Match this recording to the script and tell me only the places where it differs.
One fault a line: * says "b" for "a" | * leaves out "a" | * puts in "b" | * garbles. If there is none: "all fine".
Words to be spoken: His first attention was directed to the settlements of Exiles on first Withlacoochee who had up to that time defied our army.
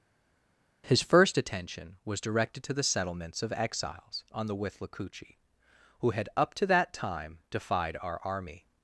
* says "the" for "first"